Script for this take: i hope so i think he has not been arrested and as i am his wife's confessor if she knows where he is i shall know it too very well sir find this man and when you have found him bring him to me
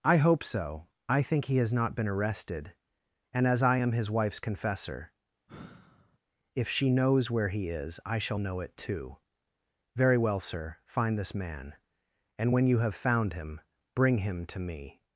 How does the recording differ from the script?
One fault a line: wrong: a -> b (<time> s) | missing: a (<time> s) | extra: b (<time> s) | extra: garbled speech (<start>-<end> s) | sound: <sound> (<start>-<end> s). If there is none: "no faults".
sound: sigh (5.5-6.2 s)